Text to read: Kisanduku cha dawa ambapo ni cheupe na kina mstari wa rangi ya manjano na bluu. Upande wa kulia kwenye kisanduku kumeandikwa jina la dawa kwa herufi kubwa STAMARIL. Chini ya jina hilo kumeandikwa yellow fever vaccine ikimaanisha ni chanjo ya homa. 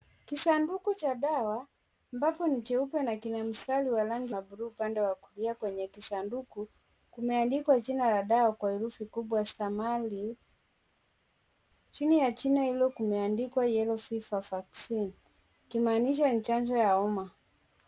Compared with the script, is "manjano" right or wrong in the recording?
wrong